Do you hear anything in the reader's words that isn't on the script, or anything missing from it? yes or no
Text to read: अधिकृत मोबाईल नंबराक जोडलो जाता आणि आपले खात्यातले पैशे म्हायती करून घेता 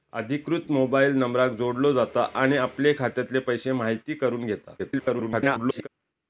yes